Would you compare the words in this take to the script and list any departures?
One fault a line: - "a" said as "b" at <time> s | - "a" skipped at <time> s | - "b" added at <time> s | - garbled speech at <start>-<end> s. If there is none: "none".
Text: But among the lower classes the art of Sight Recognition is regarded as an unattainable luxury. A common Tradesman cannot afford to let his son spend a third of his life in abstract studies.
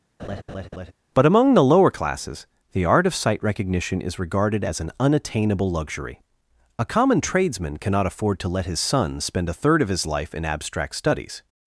none